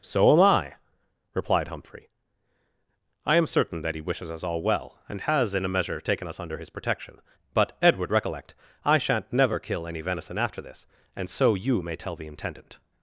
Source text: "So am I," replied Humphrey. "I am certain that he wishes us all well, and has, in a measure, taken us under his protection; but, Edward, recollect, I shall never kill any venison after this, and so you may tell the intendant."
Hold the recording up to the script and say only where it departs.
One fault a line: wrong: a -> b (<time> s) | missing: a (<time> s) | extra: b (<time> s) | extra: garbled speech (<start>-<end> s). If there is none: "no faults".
wrong: shall -> shan't (9.0 s)